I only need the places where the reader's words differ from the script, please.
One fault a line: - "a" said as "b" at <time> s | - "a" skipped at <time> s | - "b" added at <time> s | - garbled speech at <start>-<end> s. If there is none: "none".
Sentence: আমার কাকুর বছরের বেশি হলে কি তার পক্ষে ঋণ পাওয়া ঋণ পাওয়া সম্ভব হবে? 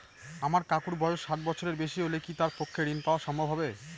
- "বয়স ষাট" added at 1.0 s
- "ঋণ পাওয়া" skipped at 3.2 s